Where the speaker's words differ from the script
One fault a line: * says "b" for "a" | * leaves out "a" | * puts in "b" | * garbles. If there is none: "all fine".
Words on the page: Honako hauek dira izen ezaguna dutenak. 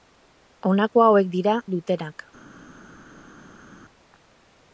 * leaves out "izen ezaguna"